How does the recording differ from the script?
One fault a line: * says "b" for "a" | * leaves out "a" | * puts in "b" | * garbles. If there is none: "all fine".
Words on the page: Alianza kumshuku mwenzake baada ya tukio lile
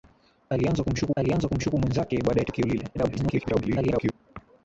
* puts in "alianza kumshuku"
* garbles